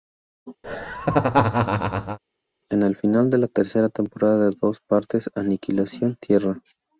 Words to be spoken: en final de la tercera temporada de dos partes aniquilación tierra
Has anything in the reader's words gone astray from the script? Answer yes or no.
yes